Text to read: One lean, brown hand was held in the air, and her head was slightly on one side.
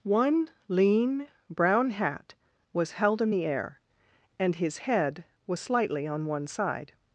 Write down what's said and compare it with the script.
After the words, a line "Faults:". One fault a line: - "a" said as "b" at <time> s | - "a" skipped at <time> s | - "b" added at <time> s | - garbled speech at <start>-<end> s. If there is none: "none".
One lean, brown hat was held in the air, and his head was slightly on one side.
Faults:
- "hand" said as "hat" at 1.9 s
- "her" said as "his" at 4.6 s